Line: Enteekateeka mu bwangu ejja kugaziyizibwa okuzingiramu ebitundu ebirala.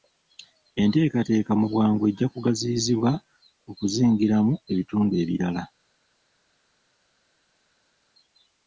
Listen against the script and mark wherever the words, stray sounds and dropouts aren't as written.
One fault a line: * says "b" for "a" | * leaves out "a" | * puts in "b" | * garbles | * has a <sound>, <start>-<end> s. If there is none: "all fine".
all fine